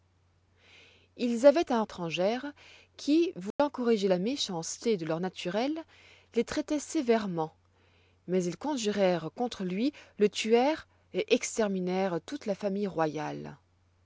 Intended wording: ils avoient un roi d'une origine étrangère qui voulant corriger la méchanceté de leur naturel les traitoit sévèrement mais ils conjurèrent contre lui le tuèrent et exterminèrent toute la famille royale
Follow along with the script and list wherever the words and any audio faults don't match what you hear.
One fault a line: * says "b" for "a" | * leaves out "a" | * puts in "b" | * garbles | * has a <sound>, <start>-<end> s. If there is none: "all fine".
* leaves out "roi d'une origine"
* has a dropout, 3.5-3.6 s